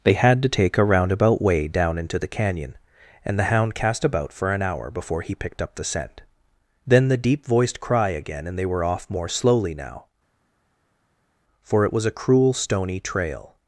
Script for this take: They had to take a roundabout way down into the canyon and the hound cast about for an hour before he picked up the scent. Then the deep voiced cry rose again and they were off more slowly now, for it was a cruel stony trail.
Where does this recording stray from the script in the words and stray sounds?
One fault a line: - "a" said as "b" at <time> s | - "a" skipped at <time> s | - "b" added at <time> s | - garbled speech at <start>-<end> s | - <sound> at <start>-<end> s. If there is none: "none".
- "rose" skipped at 8.1 s